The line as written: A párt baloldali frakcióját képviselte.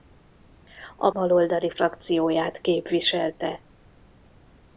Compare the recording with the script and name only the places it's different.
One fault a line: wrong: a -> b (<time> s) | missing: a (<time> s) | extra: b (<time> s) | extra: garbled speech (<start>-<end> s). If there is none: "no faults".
missing: párt (1.1 s)